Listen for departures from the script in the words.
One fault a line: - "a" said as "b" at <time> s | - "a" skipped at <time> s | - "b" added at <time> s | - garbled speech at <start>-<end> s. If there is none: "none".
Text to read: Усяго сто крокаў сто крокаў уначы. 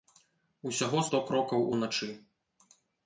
- "сто крокаў" skipped at 1.6 s